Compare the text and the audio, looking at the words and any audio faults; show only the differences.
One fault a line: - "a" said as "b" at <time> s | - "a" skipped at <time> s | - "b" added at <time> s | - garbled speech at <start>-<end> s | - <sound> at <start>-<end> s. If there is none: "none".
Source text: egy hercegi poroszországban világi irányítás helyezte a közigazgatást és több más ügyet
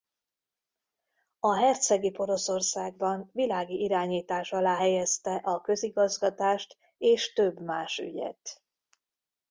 - "egy" said as "a" at 1.4 s
- "alá" added at 4.5 s